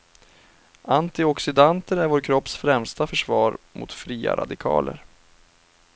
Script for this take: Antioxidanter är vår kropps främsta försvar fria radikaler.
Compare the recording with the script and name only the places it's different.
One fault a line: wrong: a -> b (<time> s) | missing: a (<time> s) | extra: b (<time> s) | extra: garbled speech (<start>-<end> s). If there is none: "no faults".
extra: mot (3.7 s)